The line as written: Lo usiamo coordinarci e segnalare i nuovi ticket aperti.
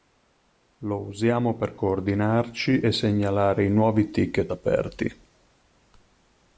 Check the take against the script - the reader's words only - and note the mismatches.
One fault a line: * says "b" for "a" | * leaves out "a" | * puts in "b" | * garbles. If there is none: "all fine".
* puts in "per"